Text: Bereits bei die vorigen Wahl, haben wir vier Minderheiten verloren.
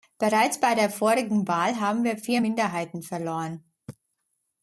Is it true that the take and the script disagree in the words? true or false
true